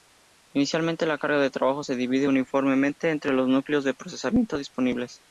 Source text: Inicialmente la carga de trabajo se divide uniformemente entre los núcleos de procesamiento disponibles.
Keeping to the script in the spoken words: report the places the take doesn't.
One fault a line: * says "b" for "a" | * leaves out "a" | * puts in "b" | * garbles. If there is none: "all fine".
all fine